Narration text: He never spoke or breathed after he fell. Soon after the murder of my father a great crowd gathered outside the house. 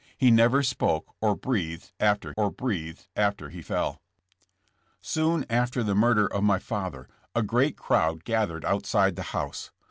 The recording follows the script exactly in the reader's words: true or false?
false